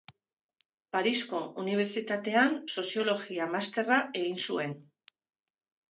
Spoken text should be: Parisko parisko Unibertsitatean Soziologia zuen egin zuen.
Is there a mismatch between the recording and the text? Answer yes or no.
yes